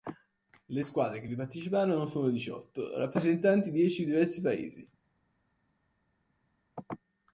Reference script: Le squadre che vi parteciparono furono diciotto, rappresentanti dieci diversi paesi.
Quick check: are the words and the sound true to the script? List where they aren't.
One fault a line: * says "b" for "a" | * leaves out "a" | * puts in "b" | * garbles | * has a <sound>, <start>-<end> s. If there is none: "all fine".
all fine